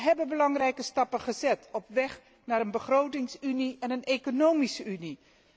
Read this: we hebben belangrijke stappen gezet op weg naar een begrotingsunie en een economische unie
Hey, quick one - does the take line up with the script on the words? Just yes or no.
yes